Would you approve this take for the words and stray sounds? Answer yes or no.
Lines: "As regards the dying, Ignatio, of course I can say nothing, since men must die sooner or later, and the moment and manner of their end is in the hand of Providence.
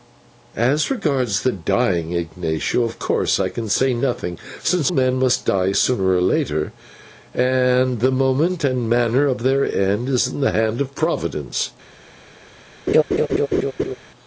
no